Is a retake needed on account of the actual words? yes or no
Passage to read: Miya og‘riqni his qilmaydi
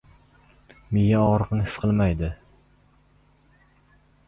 no